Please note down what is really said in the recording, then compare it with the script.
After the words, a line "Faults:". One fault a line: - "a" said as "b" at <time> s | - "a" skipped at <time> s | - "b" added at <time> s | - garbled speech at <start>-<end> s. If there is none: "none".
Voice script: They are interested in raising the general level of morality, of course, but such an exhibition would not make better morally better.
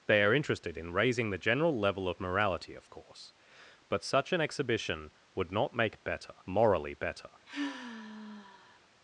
They are interested in raising the general level of morality, of course, but such an exhibition would not make better morally better.
Faults:
none